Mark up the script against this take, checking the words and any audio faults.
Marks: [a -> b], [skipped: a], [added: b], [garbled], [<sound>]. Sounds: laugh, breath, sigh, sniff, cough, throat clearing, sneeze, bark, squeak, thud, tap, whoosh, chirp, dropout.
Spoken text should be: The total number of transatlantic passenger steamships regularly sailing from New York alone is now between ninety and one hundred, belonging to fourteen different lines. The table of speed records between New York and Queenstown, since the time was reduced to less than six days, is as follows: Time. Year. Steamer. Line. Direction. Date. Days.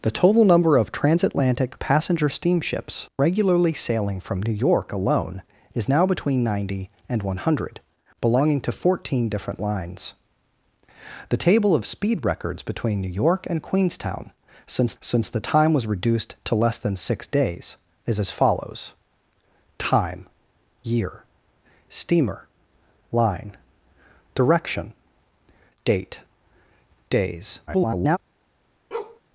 The total number of transatlantic passenger steamships regularly sailing from New York alone is now between ninety and one hundred, belonging to fourteen different lines. The table of speed records between New York and Queenstown, since [added: since] the time was reduced to less than six days, is as follows: Time. Year. Steamer. Line. Direction. Date. Days. [garbled] [bark]